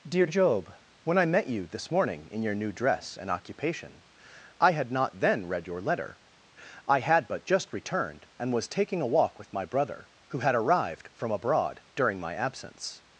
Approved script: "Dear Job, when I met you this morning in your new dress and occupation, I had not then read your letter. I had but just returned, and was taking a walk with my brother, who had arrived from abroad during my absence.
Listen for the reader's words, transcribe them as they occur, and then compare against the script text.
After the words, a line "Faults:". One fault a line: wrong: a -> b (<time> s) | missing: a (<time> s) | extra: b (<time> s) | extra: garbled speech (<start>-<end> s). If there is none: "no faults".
"Dear Job, when I met you this morning in your new dress and occupation, I had not then read your letter. I had but just returned, and was taking a walk with my brother, who had arrived from abroad during my absence.
Faults:
no faults